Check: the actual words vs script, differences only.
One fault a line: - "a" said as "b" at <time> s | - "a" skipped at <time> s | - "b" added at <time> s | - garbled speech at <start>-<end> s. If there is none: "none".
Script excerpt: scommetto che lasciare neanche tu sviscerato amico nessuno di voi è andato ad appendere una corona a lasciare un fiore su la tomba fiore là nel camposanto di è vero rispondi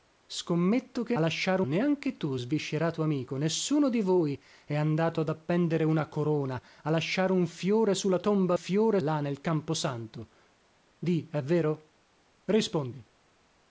none